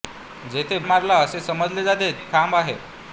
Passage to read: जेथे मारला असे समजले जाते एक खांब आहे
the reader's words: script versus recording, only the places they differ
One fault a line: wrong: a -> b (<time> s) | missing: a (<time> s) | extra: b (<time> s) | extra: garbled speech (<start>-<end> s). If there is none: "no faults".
no faults